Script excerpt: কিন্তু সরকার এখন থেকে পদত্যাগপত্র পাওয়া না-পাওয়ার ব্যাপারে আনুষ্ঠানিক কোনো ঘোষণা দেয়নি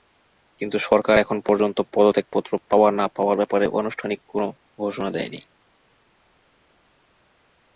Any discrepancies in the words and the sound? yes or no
yes